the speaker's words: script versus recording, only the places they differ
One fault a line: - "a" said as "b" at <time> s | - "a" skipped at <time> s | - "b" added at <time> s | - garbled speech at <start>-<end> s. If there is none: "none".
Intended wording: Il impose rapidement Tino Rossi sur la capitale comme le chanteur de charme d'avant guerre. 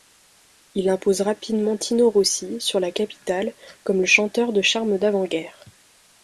none